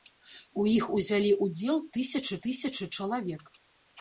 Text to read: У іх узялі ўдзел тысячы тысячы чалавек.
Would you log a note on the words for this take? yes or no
no